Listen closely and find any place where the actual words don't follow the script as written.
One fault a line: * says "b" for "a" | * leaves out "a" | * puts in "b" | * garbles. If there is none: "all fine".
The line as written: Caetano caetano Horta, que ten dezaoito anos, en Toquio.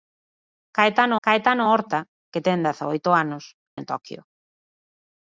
all fine